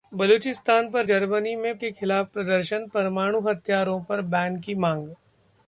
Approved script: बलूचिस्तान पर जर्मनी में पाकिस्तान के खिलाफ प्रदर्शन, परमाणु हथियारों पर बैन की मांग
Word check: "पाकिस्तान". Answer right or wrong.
wrong